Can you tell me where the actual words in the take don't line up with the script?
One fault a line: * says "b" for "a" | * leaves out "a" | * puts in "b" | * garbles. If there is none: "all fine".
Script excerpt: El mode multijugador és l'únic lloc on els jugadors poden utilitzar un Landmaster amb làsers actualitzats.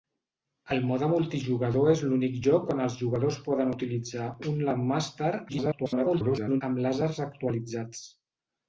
* garbles